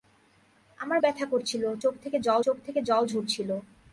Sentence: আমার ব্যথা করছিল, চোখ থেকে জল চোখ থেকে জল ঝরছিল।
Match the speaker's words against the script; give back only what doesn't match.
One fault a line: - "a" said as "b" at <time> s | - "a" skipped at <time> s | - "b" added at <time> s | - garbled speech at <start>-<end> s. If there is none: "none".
none